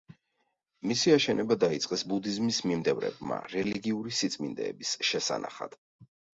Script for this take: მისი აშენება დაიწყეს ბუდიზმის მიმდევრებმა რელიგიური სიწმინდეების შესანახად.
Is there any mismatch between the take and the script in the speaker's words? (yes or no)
no